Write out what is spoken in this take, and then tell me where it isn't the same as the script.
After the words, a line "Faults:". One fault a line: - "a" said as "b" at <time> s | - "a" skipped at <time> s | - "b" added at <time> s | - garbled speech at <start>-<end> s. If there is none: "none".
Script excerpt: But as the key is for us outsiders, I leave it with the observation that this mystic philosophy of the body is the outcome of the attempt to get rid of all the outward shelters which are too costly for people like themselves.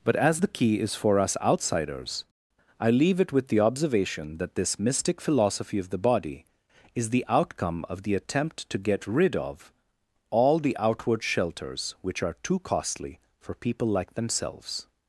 But as the key is for us outsiders, I leave it with the observation that this mystic philosophy of the body is the outcome of the attempt to get rid of all the outward shelters which are too costly for people like themselves.
Faults:
none